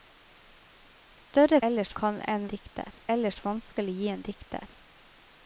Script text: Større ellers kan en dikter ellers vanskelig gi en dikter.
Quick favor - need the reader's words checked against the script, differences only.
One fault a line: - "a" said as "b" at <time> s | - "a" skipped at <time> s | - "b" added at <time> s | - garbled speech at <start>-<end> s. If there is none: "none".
none